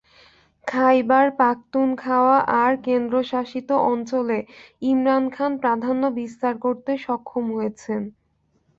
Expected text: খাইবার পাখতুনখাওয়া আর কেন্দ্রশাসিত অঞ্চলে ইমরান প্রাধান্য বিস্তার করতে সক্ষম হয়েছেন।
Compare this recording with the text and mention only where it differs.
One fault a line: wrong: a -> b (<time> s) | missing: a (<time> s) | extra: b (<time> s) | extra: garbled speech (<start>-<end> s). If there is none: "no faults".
extra: খান (5.3 s)